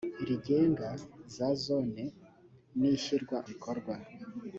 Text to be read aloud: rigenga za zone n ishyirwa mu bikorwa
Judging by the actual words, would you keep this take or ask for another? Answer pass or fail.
fail